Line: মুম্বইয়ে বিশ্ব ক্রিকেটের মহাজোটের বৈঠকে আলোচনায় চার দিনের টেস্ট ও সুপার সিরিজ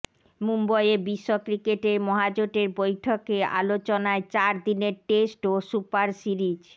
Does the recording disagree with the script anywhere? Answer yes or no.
no